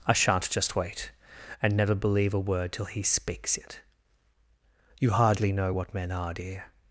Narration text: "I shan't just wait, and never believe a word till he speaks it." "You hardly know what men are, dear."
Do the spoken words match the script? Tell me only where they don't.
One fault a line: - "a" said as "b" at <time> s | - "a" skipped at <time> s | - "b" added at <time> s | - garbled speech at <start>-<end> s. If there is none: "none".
none